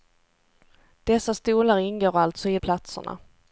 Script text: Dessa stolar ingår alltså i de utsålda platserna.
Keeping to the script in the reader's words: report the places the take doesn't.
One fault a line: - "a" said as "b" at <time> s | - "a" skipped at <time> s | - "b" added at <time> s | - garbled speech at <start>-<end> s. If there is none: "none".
- "de utsålda" skipped at 2.6 s